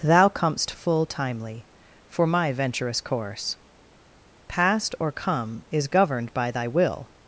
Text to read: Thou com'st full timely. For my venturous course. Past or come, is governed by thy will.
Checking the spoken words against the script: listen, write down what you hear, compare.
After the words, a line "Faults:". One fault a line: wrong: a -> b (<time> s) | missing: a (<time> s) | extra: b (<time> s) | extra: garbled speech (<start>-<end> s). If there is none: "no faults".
Thou com'st full timely. For my venturous course. Past or come, is governed by thy will.
Faults:
no faults